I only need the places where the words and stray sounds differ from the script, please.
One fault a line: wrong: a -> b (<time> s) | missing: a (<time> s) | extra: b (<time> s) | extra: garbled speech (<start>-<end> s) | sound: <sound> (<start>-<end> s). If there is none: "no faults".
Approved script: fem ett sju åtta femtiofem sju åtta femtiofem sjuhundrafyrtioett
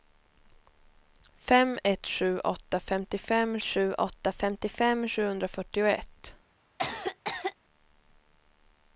sound: cough (6.8-7.6 s)